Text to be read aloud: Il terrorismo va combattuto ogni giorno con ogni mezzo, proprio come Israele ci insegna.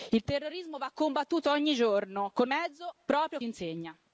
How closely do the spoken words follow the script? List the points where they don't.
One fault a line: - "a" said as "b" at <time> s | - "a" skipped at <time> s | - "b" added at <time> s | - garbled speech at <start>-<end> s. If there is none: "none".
- "ogni" skipped at 2.5 s
- "come Israele ci" skipped at 3.4 s